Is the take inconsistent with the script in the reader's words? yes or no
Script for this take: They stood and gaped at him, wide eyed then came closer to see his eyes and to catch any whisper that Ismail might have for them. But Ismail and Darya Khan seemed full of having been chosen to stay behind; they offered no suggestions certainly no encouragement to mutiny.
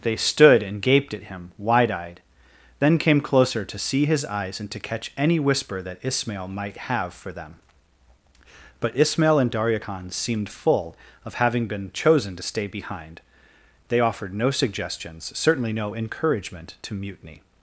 no